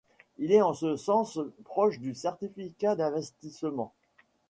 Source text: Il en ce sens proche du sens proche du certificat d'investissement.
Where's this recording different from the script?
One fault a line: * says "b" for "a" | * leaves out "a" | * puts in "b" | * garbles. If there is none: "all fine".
* puts in "est"
* leaves out "sens proche du"